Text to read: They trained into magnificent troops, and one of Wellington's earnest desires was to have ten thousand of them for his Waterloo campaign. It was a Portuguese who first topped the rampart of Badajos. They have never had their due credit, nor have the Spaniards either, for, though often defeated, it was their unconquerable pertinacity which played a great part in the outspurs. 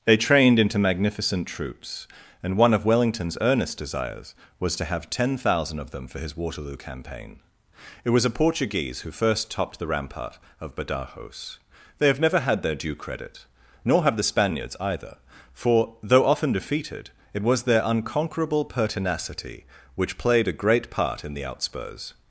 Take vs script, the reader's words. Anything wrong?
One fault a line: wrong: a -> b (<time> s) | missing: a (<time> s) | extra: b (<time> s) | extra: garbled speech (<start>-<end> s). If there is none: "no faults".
no faults